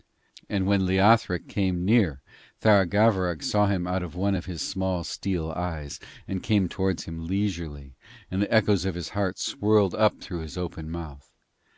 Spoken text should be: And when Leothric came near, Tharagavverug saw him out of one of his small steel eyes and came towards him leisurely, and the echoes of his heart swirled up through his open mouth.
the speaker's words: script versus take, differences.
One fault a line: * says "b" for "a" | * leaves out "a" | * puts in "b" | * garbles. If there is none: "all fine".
all fine